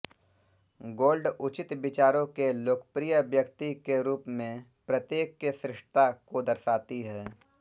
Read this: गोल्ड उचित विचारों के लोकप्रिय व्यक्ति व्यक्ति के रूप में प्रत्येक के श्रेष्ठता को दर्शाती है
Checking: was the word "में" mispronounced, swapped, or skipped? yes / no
no